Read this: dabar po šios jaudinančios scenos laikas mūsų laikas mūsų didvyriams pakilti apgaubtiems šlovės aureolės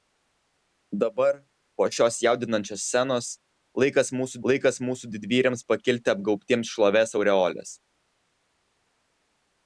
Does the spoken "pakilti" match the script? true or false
true